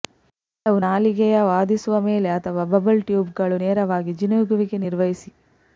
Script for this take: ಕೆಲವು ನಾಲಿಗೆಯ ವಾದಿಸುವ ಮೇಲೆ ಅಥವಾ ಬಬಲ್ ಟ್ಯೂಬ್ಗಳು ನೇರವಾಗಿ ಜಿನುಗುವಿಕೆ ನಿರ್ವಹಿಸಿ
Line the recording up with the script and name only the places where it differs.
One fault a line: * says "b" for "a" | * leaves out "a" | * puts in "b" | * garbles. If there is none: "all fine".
all fine